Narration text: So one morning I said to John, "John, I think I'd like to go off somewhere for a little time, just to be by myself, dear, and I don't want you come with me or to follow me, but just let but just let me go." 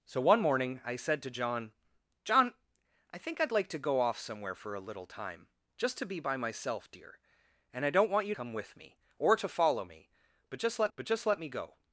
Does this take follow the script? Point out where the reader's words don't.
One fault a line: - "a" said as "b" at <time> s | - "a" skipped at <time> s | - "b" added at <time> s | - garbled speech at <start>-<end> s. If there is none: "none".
none